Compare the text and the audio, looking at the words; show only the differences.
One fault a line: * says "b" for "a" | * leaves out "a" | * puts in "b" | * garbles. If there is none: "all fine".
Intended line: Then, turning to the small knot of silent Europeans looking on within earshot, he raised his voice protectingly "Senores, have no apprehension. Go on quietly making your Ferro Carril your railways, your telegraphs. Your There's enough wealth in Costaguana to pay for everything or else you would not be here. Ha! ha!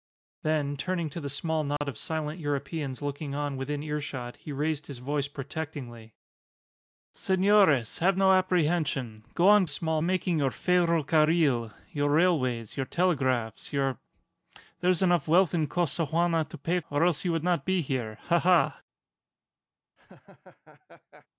* says "small" for "quietly"
* leaves out "for everything"